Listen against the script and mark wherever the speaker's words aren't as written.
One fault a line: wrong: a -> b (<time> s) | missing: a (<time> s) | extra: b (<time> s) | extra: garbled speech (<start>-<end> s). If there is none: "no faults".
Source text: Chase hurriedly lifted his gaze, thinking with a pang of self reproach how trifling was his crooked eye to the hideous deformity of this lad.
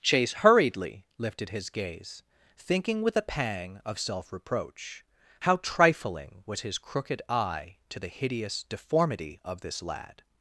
no faults